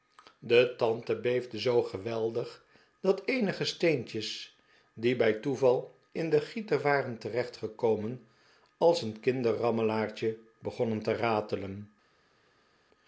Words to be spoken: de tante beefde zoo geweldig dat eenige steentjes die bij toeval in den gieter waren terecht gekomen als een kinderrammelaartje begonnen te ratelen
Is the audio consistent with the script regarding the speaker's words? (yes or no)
yes